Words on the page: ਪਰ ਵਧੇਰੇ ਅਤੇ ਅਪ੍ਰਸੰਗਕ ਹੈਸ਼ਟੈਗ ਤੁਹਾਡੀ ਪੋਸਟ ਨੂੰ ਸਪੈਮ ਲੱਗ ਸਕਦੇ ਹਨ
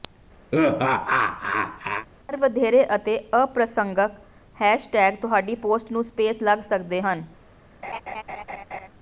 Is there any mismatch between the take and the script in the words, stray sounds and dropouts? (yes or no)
yes